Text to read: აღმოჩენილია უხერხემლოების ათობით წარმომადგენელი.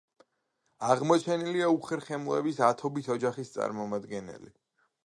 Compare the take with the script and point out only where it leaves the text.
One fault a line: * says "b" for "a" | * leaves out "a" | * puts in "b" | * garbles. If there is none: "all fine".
* puts in "ოჯახის"